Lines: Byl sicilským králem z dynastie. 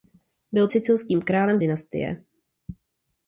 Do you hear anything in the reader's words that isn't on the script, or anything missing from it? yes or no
no